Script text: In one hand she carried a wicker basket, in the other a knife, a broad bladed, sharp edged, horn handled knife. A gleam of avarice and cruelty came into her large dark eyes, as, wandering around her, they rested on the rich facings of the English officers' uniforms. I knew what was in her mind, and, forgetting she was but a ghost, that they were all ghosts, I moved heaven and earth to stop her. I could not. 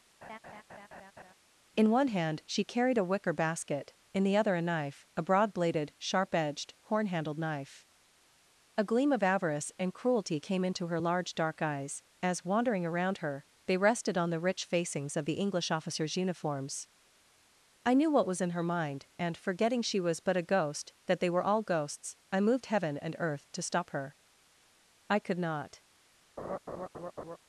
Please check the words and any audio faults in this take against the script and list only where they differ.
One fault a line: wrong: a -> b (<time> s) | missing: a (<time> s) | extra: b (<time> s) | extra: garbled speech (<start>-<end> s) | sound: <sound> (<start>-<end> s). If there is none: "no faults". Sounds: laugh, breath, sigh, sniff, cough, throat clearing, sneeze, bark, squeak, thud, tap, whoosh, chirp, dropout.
sound: laugh (0.2-1.3 s)
sound: laugh (26.4-27.4 s)